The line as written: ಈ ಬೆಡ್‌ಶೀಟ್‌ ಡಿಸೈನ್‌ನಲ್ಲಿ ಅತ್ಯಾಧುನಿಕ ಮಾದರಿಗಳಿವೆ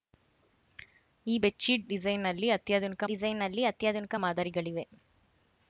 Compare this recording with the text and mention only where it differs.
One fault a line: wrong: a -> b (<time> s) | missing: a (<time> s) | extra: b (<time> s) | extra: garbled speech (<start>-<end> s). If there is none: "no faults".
extra: ಡಿಸೈನ್‌ನಲ್ಲಿ ಅತ್ಯಾಧುನಿಕ (3.1 s)